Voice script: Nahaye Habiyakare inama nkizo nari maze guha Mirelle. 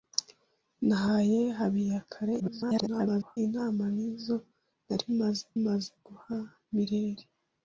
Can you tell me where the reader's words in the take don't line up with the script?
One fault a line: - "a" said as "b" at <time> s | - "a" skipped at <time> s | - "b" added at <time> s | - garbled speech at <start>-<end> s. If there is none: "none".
- garbled speech at 2.4-3.4 s
- "maze" added at 5.6 s